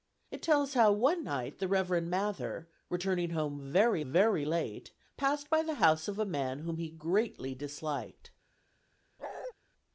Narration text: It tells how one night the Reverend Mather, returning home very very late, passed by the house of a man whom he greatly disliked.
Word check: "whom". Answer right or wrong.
right